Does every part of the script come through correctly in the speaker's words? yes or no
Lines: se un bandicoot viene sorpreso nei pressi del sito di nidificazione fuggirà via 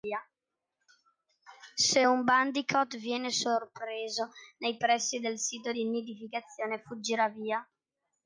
yes